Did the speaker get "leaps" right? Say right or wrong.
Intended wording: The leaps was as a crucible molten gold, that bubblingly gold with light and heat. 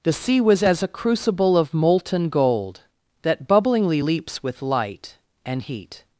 wrong